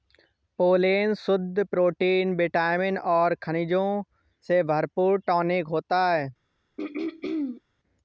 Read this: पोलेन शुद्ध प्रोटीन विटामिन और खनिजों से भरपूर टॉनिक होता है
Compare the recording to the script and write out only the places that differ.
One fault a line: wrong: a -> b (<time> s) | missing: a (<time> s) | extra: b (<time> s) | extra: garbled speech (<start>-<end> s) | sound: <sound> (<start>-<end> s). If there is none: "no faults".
sound: throat clearing (6.8-7.6 s)